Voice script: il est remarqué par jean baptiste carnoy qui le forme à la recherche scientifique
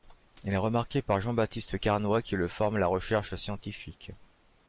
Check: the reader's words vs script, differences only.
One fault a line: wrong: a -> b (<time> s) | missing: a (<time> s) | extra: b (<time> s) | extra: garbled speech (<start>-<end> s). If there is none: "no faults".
no faults